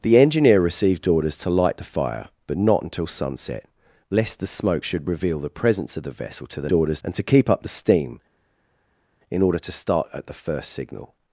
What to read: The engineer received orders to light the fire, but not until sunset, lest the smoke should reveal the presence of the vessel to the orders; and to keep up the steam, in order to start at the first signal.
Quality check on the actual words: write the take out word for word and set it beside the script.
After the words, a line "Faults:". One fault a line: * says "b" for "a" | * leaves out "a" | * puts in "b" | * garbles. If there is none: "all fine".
The engineer received orders to light the fire, but not until sunset, lest the smoke should reveal the presence of the vessel to the orders; and to keep up the steam, in order to start at the first signal.
Faults:
all fine